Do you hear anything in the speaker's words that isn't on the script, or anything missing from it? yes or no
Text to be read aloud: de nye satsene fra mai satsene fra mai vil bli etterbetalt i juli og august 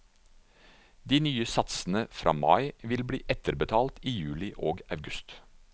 yes